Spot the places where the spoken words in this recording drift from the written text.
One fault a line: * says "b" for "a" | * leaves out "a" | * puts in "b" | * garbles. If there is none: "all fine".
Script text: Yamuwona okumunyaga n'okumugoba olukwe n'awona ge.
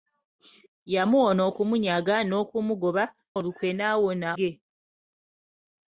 all fine